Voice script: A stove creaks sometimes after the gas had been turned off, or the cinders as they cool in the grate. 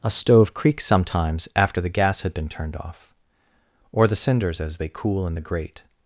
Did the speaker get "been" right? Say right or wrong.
right